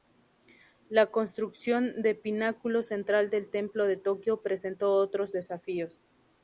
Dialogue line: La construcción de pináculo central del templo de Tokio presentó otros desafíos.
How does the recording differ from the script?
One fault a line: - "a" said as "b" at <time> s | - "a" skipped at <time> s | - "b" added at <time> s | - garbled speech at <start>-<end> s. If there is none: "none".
none